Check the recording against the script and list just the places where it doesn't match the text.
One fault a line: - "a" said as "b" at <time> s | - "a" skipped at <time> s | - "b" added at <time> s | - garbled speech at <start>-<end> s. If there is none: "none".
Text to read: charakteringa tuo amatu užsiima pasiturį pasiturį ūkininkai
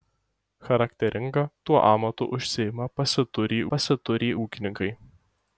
none